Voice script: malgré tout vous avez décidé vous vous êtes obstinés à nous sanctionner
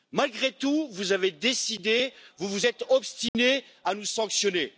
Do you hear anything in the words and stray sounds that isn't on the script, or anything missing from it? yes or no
yes